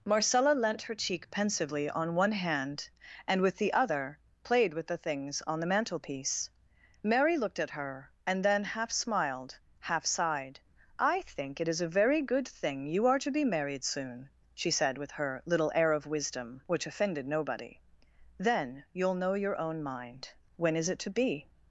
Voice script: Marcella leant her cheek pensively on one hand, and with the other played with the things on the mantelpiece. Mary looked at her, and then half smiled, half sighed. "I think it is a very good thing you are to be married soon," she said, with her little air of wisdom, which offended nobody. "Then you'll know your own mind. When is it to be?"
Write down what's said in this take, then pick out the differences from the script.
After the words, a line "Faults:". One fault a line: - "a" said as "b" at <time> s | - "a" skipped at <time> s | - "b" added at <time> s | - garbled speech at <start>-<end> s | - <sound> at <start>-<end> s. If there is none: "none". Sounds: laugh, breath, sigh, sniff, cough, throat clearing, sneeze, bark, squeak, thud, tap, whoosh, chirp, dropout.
Marcella leant her cheek pensively on one hand, and with the other played with the things on the mantelpiece. Mary looked at her, and then half smiled, half sighed. "I think it is a very good thing you are to be married soon," she said, with her little air of wisdom, which offended nobody. "Then you'll know your own mind. When is it to be?"
Faults:
none